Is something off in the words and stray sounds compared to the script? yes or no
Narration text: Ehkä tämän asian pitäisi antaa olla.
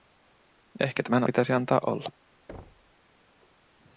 yes